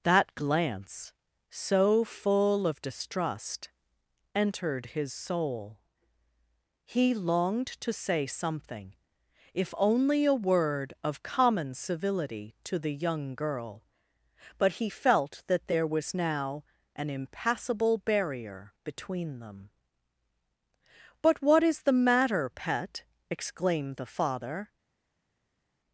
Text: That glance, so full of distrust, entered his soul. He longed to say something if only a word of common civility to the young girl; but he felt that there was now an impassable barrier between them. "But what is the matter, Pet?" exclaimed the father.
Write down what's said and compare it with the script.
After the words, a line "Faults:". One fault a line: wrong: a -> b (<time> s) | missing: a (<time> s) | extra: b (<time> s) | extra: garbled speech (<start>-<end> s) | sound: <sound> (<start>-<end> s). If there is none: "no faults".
That glance, so full of distrust, entered his soul. He longed to say something if only a word of common civility to the young girl; but he felt that there was now an impassable barrier between them. "But what is the matter, Pet?" exclaimed the father.
Faults:
no faults